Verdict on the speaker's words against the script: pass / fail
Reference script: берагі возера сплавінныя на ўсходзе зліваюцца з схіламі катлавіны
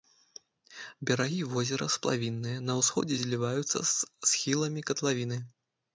pass